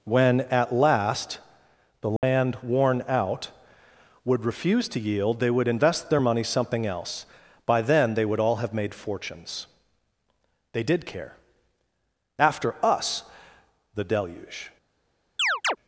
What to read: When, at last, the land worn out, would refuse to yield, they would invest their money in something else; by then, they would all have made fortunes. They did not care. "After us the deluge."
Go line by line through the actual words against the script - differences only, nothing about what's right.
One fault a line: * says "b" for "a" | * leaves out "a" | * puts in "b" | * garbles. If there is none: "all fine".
* leaves out "in"
* leaves out "not"